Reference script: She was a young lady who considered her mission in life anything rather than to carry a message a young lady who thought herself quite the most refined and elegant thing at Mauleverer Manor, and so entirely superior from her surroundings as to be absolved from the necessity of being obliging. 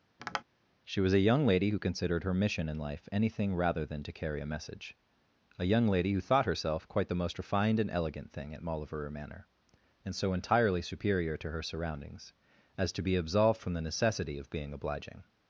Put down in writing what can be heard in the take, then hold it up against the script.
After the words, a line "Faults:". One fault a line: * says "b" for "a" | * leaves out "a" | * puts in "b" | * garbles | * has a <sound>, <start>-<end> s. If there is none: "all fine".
She was a young lady who considered her mission in life anything rather than to carry a message a young lady who thought herself quite the most refined and elegant thing at Mauleverer Manor, and so entirely superior to her surroundings as to be absolved from the necessity of being obliging.
Faults:
* has a tap, 0.2-0.4 s
* says "to" for "from"